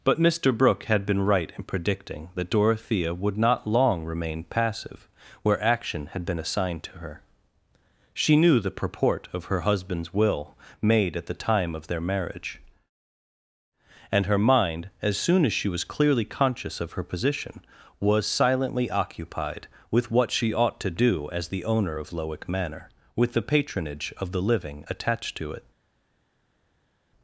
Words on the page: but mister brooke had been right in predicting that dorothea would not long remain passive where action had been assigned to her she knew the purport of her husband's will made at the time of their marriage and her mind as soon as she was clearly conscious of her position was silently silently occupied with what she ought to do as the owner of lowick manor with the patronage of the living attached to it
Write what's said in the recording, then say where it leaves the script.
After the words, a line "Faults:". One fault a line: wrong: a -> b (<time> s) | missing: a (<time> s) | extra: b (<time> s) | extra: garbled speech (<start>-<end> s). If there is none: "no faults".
but mister brooke had been right in predicting that dorothea would not long remain passive where action had been assigned to her she knew the purport of her husband's will made at the time of their marriage and her mind as soon as she was clearly conscious of her position was silently occupied with what she ought to do as the owner of lowick manor with the patronage of the living attached to it
Faults:
missing: silently (18.9 s)